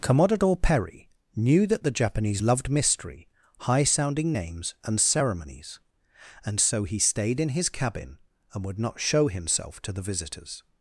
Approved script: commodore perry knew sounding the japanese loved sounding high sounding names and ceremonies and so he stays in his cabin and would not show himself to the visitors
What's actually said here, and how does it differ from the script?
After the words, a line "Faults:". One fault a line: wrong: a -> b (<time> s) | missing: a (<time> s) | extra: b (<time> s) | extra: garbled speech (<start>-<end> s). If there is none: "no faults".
commodore perry knew that the japanese loved mystery high sounding names and ceremonies and so he stayed in his cabin and would not show himself to the visitors
Faults:
wrong: sounding -> that (1.7 s)
wrong: sounding -> mystery (2.7 s)
wrong: stays -> stayed (7.0 s)